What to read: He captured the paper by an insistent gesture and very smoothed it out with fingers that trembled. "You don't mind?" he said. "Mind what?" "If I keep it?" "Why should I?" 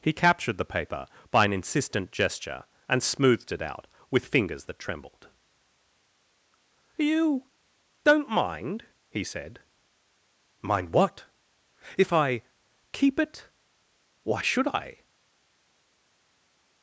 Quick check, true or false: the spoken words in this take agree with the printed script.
false